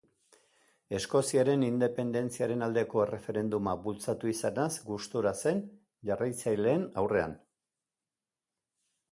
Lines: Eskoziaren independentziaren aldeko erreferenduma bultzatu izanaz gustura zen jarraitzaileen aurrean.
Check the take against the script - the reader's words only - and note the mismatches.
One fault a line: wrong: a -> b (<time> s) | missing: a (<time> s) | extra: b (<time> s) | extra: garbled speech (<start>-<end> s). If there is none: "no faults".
no faults